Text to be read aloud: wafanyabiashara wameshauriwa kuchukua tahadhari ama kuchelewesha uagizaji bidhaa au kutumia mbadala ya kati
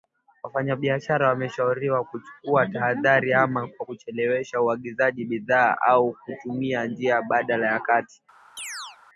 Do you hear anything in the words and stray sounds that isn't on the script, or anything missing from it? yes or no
yes